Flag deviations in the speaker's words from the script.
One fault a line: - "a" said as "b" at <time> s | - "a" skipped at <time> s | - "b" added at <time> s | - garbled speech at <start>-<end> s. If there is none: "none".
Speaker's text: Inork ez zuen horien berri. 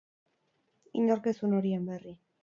none